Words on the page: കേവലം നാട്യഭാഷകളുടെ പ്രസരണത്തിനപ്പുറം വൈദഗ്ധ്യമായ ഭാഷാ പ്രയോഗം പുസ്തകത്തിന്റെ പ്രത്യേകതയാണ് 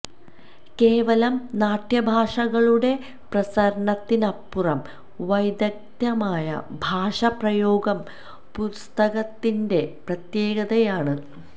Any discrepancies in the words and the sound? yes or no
no